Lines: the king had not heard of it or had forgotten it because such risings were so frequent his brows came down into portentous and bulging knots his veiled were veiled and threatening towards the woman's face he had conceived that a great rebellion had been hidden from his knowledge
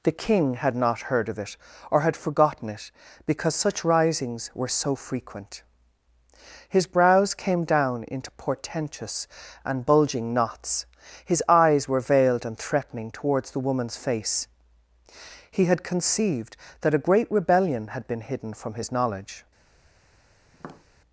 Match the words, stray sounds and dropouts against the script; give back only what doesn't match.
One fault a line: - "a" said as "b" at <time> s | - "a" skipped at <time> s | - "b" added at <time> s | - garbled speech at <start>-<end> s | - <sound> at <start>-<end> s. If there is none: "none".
- "veiled" said as "eyes" at 11.5 s
- tap at 20.5-20.9 s